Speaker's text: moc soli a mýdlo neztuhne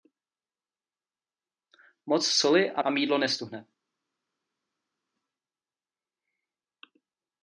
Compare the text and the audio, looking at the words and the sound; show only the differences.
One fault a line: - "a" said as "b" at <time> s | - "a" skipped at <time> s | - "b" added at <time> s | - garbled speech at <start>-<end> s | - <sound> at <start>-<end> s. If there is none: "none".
- "a" added at 2.8 s